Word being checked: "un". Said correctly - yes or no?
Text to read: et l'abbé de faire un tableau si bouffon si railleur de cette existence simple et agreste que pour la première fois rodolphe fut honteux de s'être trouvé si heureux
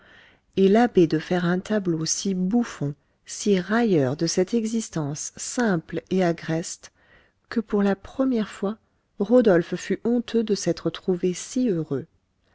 yes